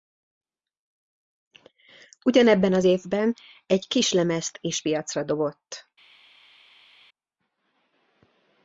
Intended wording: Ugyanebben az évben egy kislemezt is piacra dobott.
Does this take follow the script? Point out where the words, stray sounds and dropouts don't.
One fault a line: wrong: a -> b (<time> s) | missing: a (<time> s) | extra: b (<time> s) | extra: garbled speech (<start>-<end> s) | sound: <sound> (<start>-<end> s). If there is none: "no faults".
no faults